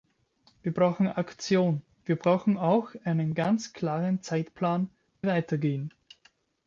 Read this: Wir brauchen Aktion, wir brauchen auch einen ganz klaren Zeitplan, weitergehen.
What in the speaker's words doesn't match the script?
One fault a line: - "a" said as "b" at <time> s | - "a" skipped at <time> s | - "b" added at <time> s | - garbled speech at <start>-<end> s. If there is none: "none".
none